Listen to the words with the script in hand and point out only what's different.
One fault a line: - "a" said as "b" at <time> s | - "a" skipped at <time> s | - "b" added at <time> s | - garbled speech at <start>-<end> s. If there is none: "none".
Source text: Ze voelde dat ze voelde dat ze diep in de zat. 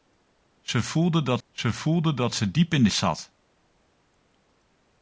none